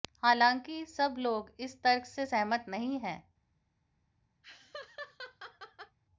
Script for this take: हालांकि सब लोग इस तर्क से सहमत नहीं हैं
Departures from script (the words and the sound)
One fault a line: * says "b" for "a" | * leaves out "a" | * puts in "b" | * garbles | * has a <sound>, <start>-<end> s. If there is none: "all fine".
* has a laugh, 4.4-6.0 s